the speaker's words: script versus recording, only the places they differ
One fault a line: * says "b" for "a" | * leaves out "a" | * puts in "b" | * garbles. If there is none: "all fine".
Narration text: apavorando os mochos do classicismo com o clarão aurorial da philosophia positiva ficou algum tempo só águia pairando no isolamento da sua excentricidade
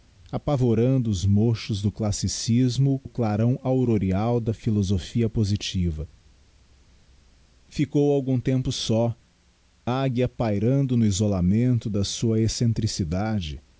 * leaves out "com"